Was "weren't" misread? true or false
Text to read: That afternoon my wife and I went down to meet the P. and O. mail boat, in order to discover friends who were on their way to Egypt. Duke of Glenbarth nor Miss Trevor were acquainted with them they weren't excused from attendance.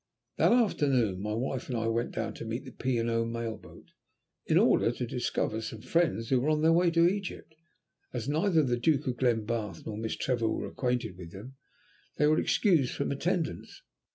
true